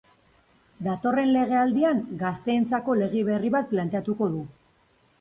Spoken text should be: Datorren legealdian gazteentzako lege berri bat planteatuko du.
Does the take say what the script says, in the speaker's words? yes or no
yes